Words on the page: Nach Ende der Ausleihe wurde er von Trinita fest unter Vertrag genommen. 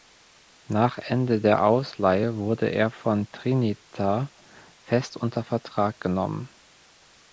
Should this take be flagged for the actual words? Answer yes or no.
no